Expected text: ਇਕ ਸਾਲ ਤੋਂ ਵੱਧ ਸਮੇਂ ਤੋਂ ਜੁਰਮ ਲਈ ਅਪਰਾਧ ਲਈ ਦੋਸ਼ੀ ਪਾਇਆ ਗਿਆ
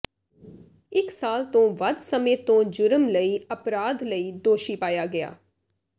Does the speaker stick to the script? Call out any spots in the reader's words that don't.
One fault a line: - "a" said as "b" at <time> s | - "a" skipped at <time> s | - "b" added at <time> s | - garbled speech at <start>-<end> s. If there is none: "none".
none